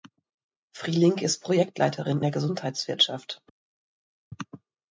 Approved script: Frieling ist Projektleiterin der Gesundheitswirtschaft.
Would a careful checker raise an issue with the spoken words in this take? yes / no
no